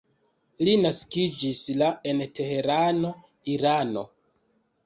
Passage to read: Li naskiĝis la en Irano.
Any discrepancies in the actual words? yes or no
yes